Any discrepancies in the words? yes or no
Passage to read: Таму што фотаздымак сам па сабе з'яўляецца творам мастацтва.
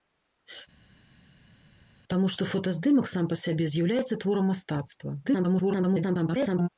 yes